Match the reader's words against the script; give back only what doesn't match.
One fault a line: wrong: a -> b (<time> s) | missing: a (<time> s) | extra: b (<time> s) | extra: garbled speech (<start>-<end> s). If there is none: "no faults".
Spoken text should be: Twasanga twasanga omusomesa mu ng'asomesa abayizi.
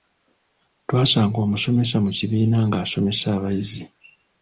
missing: twasanga (1.4 s)
extra: kibiina (2.2 s)